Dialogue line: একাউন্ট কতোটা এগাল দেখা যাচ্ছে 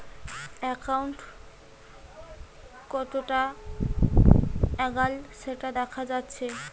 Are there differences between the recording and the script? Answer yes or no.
yes